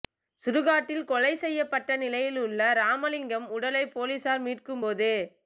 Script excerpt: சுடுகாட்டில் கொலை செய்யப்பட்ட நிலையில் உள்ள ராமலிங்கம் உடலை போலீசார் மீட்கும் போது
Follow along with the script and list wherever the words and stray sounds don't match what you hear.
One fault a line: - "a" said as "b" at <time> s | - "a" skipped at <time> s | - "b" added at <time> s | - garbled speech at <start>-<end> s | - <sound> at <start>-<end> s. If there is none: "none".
none